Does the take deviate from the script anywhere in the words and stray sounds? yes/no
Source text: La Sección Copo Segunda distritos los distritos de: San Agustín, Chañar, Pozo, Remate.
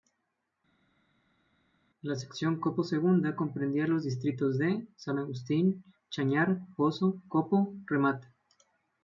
yes